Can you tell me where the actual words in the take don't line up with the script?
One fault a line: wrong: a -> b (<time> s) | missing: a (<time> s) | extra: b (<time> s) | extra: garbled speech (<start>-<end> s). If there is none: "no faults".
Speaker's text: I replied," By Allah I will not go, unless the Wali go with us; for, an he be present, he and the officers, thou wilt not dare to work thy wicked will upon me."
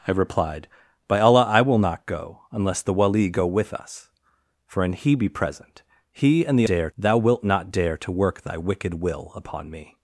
wrong: officers -> dare (6.6 s)